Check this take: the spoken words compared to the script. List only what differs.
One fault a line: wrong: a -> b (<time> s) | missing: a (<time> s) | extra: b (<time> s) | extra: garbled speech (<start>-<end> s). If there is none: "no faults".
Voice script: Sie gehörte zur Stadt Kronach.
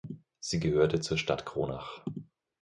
no faults